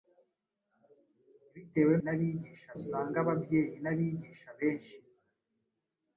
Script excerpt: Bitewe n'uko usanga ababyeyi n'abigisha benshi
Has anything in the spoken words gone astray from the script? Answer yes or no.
yes